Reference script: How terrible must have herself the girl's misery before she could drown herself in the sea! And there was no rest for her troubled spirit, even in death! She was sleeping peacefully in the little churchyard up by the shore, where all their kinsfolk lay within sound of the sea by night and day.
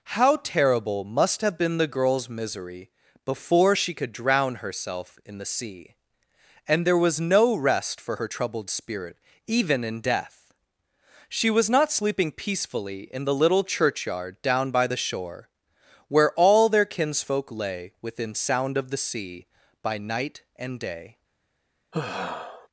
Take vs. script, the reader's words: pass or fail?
fail